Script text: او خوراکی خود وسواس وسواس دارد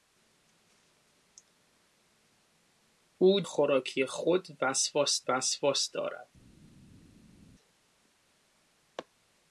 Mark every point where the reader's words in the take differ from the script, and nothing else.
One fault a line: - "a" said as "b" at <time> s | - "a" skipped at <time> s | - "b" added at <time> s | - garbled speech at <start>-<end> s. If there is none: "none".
none